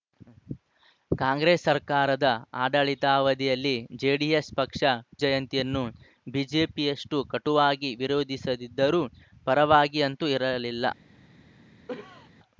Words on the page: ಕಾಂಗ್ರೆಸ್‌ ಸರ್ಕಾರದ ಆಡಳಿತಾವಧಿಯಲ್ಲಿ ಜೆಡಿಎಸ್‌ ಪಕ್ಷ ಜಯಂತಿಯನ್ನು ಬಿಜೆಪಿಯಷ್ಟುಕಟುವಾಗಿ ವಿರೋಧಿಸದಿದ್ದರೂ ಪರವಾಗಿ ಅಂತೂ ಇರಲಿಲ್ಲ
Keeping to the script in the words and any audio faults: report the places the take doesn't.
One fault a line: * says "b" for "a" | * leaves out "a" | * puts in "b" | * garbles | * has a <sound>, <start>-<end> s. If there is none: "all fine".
* has a cough, 11.9-12.3 s